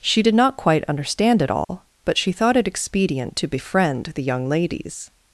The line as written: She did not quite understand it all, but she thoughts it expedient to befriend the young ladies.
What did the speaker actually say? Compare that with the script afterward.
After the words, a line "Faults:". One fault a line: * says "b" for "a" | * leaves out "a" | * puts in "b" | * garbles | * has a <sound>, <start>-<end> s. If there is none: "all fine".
She did not quite understand it all, but she thought it expedient to befriend the young ladies.
Faults:
* has a dropout, 1.6-1.7 s
* says "thought" for "thoughts"